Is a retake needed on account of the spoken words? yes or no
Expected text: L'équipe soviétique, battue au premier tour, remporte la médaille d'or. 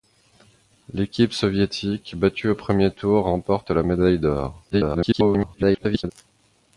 yes